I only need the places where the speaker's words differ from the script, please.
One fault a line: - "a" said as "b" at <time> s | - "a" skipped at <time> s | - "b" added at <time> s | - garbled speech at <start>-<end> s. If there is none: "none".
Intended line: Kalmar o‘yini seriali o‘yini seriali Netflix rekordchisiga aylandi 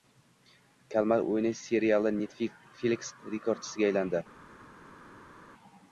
- "o‘yini seriali" skipped at 2.1 s